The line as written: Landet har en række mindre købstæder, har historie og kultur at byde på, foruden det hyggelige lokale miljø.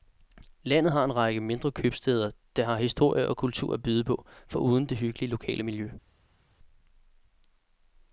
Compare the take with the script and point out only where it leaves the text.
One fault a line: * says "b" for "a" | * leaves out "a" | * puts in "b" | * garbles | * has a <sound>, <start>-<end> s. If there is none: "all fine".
* puts in "der"